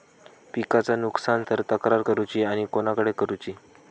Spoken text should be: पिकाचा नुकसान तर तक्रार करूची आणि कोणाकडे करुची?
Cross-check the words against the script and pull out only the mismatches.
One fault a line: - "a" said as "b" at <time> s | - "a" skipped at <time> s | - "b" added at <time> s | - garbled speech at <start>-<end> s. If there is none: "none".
none